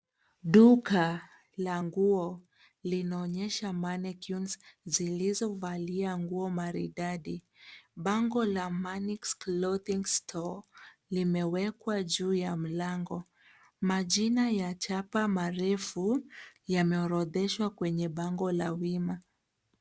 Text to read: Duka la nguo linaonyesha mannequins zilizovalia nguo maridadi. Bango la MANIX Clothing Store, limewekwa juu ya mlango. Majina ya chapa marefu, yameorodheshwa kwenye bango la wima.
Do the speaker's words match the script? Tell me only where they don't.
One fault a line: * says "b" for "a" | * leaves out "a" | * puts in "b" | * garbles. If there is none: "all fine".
all fine